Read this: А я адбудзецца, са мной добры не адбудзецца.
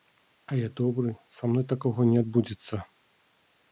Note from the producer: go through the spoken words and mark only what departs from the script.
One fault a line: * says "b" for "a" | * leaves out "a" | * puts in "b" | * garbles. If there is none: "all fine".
* says "добры" for "адбудзецца"
* says "такога" for "добры"